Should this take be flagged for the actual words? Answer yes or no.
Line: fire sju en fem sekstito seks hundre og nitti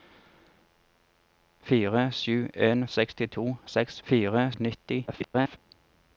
yes